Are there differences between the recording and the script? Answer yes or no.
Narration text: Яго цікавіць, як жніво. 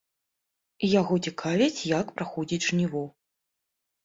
yes